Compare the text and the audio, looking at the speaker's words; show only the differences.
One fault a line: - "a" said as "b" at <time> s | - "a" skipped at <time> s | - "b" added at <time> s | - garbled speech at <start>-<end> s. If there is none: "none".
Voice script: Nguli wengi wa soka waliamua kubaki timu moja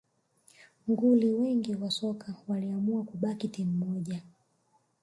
none